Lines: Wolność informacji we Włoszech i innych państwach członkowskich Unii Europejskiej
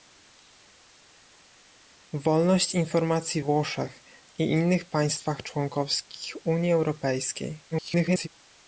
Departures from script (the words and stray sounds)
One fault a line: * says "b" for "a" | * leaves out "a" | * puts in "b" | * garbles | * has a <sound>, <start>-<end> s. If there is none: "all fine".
* leaves out "we"
* garbles